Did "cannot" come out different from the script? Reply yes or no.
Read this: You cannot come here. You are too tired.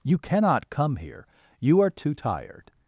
no